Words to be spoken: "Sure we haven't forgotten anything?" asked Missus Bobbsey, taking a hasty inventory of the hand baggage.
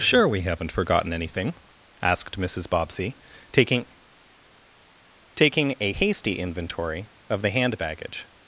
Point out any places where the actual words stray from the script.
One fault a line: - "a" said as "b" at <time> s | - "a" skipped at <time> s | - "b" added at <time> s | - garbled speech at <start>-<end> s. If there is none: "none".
- "taking" added at 5.3 s